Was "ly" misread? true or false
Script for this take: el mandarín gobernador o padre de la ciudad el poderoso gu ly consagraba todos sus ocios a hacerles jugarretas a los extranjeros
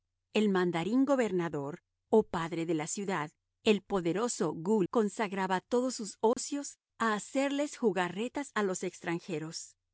true